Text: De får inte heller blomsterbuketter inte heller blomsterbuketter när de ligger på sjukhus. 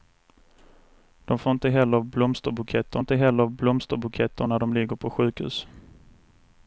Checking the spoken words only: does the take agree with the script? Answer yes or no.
yes